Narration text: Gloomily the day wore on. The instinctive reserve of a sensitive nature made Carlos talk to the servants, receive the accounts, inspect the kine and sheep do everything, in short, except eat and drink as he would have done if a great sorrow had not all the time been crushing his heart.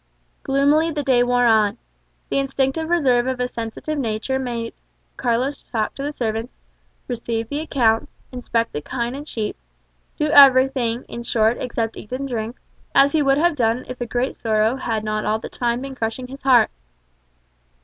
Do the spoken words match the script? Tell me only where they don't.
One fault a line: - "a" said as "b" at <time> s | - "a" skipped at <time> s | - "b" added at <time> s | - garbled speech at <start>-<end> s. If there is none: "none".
none